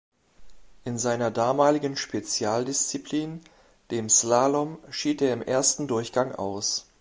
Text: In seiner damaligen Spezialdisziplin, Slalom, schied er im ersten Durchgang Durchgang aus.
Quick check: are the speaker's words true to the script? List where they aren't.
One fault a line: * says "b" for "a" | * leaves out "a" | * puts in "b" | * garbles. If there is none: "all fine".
* puts in "dem"
* leaves out "Durchgang"